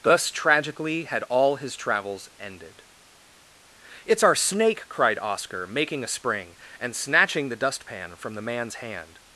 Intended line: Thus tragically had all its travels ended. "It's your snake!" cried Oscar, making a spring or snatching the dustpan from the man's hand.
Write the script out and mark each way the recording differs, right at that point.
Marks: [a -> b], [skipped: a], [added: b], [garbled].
Thus tragically had all [its -> his] travels ended. "It's [your -> our] snake!" cried Oscar, making a spring [or -> and] snatching the dustpan from the man's hand.